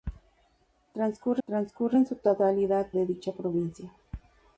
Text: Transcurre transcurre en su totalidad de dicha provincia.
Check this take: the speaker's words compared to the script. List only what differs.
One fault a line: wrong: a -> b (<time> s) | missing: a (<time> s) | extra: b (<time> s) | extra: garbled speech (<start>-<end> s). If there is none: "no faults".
no faults